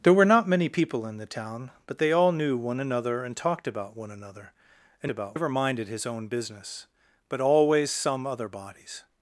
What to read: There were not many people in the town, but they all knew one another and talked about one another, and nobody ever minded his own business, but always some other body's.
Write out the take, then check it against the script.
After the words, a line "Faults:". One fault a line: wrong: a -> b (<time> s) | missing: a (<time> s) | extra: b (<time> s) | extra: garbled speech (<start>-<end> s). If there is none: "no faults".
There were not many people in the town, but they all knew one another and talked about one another, and about ever minded his own business, but always some other body's.
Faults:
wrong: nobody -> about (5.1 s)